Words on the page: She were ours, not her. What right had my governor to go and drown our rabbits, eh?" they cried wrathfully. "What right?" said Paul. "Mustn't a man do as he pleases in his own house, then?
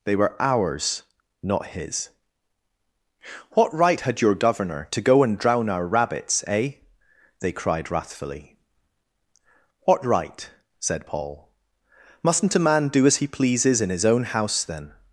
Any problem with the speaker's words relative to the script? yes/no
yes